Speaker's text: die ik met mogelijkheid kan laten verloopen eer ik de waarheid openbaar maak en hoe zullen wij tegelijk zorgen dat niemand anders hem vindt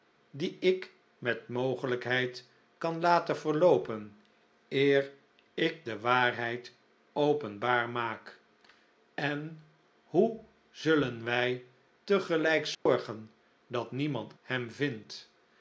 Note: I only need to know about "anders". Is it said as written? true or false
false